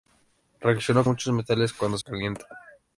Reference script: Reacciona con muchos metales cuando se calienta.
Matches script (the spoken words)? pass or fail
fail